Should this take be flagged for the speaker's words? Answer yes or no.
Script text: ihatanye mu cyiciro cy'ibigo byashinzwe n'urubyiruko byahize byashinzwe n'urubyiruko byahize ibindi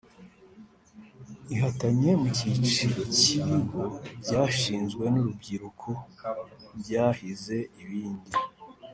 yes